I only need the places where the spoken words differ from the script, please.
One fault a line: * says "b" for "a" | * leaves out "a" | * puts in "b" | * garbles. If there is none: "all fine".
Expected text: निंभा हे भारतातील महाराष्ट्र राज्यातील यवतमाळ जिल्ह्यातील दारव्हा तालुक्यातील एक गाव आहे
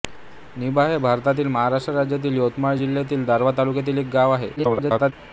* garbles